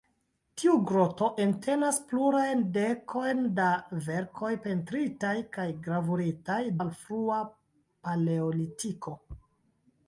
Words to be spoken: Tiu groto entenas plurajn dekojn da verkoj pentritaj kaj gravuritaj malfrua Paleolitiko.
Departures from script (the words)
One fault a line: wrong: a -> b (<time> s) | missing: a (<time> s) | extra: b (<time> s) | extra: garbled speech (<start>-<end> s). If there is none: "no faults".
no faults